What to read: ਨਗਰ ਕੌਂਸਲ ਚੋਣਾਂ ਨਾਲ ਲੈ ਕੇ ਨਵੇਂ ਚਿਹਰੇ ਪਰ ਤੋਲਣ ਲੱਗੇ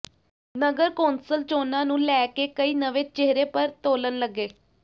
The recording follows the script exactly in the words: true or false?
false